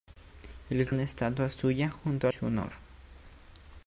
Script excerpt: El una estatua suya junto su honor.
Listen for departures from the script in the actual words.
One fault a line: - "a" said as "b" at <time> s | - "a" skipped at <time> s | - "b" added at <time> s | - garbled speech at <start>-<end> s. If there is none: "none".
none